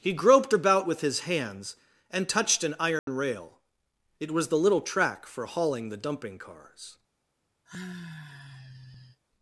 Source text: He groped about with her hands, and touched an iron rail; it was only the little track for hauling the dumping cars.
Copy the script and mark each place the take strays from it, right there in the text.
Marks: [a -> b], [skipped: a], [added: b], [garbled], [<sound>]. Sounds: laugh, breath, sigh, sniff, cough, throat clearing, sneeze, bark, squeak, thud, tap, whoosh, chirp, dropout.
He groped about with [her -> his] hands, and touched an iron [dropout] rail; it was [skipped: only] the little track for hauling the dumping cars. [sigh]